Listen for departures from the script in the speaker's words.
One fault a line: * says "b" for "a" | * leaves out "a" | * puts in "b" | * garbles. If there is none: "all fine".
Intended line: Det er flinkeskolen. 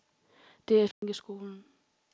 all fine